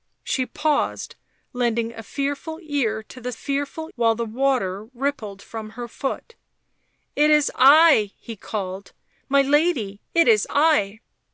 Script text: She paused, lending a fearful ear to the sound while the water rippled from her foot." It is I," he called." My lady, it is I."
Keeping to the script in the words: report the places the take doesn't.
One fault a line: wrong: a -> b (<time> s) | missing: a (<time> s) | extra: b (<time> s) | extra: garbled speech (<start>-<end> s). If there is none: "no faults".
wrong: sound -> fearful (3.3 s)